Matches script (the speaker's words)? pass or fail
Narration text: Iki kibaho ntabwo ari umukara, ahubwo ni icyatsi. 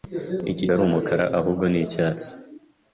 fail